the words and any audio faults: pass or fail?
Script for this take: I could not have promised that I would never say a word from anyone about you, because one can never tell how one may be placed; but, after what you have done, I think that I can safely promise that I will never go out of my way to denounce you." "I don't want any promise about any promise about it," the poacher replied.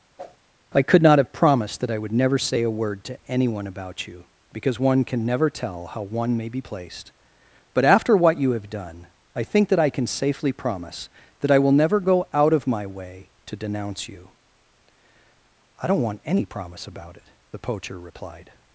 fail